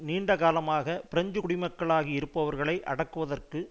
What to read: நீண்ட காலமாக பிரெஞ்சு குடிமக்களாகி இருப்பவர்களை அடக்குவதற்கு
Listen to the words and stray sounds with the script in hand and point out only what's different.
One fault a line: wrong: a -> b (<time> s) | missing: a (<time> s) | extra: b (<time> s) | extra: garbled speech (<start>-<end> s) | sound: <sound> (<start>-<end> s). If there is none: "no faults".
no faults